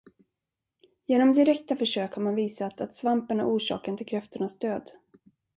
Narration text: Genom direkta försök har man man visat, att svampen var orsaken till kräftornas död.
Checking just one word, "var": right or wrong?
wrong